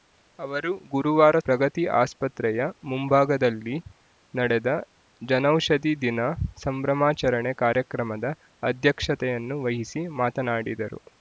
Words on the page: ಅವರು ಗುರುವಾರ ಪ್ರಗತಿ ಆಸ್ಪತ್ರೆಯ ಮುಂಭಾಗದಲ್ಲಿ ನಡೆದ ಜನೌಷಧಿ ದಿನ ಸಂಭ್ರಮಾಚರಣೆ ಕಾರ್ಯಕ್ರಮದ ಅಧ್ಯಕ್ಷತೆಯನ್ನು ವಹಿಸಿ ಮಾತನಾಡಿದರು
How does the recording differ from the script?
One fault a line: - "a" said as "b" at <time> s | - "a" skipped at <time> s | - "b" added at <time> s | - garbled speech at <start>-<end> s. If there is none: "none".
none